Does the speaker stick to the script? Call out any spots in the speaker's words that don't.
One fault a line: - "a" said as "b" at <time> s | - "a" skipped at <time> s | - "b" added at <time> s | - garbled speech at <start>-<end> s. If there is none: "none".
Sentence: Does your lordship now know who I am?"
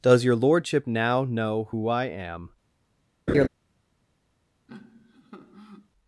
none